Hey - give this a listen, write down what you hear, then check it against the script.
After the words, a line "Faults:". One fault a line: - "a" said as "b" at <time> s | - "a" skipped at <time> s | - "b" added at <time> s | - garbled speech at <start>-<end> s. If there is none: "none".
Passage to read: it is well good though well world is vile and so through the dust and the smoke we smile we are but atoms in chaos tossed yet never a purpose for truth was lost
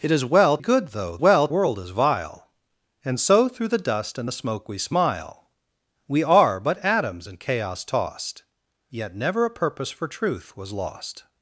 it is well good though well world is vile and so through the dust and the smoke we smile we are but atoms in chaos tossed yet never a purpose for truth was lost
Faults:
none